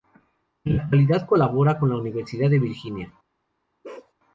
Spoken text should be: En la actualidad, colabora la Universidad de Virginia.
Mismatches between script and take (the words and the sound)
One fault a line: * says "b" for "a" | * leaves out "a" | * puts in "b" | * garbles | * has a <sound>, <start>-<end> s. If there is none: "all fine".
* puts in "con"
* has a bark, 3.8-4.1 s